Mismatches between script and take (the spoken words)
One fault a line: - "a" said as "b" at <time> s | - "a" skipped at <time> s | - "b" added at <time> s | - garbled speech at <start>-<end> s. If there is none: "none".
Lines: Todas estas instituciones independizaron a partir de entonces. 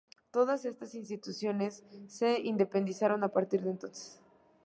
- "se" added at 2.1 s